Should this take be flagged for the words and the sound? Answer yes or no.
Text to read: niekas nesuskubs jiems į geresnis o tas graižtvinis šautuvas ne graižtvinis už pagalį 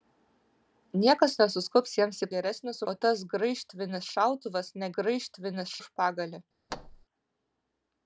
yes